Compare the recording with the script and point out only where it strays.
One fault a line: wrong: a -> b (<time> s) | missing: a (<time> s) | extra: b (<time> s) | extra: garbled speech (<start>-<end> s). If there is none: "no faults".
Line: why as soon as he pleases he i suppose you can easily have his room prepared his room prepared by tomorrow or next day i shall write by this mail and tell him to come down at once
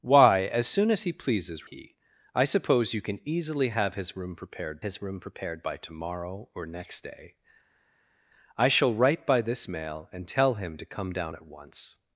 no faults